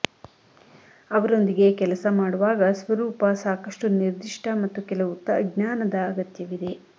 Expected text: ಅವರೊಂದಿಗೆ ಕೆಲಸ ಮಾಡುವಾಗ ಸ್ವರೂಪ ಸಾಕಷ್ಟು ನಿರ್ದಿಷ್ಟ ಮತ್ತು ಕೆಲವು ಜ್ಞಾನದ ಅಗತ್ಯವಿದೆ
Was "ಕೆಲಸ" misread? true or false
false